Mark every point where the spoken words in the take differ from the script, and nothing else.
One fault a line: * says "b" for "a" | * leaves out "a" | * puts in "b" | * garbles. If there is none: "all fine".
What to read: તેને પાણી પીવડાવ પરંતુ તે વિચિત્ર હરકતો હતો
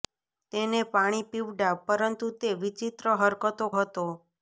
all fine